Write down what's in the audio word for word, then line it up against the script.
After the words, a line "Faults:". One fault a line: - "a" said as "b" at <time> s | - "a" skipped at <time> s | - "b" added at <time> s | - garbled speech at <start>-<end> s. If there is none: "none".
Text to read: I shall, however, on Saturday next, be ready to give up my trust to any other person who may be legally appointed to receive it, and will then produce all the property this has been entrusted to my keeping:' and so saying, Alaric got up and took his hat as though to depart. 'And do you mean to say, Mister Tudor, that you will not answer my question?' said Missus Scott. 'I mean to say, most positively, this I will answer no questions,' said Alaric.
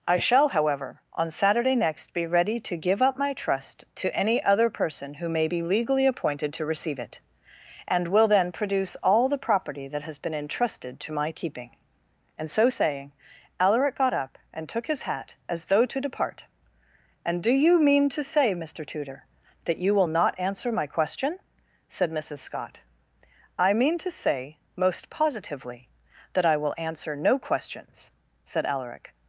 I shall, however, on Saturday next, be ready to give up my trust to any other person who may be legally appointed to receive it, and will then produce all the property that has been entrusted to my keeping:' and so saying, Alaric got up and took his hat as though to depart. 'And do you mean to say, Mister Tudor, that you will not answer my question?' said Missus Scott. 'I mean to say, most positively, that I will answer no questions,' said Alaric.
Faults:
- "this" said as "that" at 9.9 s
- "this" said as "that" at 26.3 s